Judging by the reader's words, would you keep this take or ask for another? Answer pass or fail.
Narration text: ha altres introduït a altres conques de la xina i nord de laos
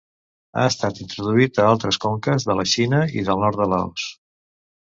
fail